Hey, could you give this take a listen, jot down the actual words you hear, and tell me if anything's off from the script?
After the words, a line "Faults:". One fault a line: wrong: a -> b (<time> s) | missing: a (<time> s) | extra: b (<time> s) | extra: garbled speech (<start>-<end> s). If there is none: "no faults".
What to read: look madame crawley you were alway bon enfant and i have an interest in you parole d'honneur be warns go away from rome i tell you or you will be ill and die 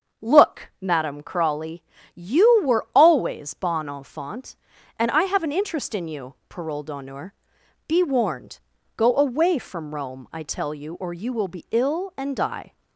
look madame crawley you were always bon enfant and i have an interest in you parole d'honneur be warned go away from rome i tell you or you will be ill and die
Faults:
wrong: alway -> always (3.0 s)
wrong: warns -> warned (8.0 s)